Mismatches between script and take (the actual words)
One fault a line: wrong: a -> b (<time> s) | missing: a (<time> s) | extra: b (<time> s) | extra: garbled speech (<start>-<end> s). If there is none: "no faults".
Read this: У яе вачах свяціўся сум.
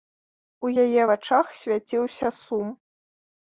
no faults